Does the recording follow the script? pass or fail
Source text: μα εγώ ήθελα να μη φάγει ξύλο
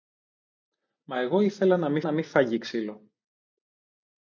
fail